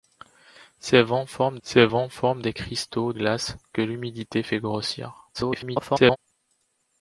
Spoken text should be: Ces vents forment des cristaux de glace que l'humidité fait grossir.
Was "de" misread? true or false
true